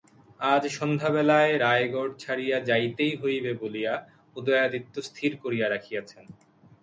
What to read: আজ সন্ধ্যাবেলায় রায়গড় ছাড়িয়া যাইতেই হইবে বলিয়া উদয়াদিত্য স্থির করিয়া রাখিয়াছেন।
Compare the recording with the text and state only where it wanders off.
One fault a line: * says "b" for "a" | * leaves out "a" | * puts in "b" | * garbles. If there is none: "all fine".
all fine